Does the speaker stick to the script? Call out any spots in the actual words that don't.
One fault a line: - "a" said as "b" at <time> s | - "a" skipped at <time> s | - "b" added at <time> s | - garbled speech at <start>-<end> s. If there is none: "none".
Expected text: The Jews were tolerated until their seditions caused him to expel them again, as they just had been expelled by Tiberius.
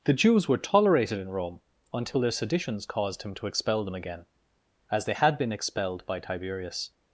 - "in Rome" added at 1.2 s
- "just" skipped at 5.1 s